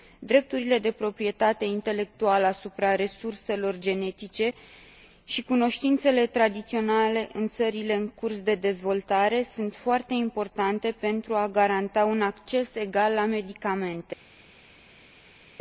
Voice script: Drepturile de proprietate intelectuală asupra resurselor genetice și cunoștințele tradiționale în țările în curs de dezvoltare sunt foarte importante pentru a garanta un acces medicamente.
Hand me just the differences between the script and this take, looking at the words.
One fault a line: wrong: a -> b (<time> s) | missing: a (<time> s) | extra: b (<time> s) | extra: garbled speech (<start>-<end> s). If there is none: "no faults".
extra: egal la (12.8 s)